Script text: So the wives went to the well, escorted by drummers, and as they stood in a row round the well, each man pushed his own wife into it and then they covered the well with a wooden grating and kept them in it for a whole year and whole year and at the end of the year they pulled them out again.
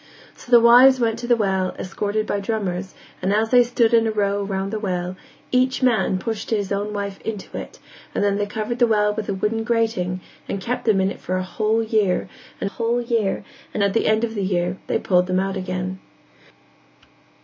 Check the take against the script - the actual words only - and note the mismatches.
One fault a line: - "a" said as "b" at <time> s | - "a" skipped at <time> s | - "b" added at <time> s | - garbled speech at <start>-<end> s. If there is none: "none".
none